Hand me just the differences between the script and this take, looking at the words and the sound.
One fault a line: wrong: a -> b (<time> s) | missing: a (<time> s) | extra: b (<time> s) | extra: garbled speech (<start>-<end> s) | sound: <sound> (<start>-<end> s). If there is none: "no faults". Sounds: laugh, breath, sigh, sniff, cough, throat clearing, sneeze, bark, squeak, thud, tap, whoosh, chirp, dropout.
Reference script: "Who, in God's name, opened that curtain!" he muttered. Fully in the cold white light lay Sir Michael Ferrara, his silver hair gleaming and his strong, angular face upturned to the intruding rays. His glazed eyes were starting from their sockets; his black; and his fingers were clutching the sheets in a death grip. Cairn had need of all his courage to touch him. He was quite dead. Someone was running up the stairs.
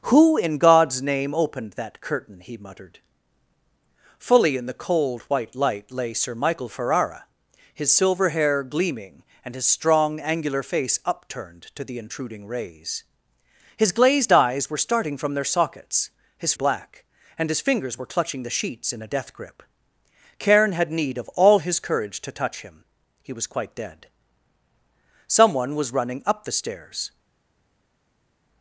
no faults